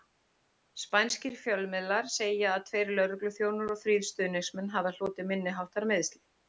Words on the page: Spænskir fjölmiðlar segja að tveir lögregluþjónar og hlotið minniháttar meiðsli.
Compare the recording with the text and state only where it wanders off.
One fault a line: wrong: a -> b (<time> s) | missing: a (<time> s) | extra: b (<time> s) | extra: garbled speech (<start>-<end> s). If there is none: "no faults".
extra: þrír stuðningsmenn hafi (3.8 s)